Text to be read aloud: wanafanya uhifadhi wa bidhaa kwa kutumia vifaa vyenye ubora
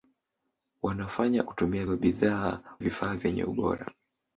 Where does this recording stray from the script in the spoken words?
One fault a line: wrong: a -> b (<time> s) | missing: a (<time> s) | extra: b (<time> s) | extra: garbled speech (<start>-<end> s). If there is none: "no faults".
wrong: uhifadhi -> kutumia (1.4 s)
missing: kwa kutumia (2.6 s)